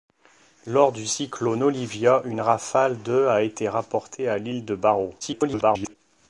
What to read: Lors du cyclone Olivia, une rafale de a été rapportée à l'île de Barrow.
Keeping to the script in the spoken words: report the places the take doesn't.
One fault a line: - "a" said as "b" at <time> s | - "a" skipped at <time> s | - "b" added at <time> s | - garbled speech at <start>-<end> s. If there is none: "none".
- garbled speech at 5.2-6.0 s